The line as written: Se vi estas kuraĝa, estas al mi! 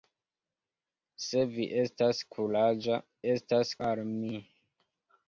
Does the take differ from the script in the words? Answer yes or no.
no